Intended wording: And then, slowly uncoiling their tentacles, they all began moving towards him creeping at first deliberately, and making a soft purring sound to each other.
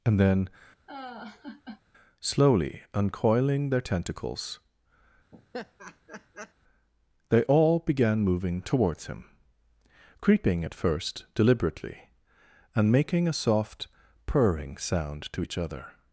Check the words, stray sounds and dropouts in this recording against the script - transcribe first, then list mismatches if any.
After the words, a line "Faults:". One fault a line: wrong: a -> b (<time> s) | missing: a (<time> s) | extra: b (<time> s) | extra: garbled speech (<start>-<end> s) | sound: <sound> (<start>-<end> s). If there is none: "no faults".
And then, slowly uncoiling their tentacles, they all began moving towards him creeping at first deliberately, and making a soft purring sound to each other.
Faults:
sound: laugh (0.9-1.8 s)
sound: laugh (5.3-6.5 s)